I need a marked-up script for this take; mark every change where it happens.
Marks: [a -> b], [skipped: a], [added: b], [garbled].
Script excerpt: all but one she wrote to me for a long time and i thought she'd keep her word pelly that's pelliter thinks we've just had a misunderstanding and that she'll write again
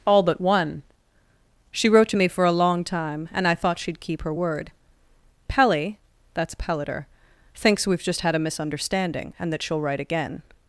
all but one she wrote to me for a long time and i thought she'd keep her word pelly that's pelliter thinks we've just had a misunderstanding and that she'll write again